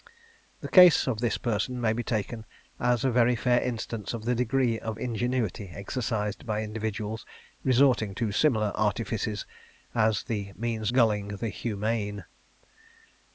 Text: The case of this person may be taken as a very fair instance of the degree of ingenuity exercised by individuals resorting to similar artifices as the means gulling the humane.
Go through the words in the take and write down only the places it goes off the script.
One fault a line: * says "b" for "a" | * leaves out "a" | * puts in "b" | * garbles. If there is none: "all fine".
all fine